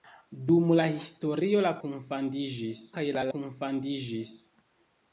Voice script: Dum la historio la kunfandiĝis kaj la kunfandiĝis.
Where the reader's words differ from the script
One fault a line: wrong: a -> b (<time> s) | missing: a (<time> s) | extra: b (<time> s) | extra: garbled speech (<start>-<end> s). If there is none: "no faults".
no faults